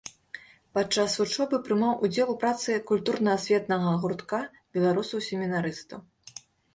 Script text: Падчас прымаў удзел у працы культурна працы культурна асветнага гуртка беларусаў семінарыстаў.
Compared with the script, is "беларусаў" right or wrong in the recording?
right